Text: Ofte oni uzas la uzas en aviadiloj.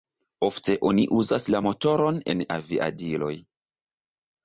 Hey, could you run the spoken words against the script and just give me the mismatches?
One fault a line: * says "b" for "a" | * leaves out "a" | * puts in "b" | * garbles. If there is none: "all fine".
* says "motoron" for "uzas"